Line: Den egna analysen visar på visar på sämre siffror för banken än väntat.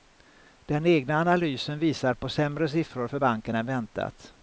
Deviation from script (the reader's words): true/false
true